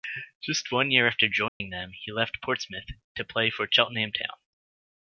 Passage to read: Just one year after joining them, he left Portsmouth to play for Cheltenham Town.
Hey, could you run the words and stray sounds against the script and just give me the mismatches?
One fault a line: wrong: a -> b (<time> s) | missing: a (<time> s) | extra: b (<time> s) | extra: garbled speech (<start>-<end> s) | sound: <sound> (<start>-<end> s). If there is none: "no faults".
sound: dropout (1.5-1.6 s)